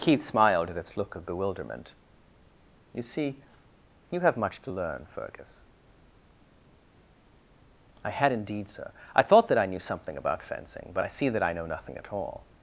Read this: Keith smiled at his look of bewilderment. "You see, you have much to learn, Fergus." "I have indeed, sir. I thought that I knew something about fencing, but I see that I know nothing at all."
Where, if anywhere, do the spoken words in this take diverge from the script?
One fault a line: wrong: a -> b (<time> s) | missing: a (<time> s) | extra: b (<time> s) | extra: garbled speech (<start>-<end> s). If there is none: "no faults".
wrong: his -> its (0.8 s)
wrong: have -> had (8.1 s)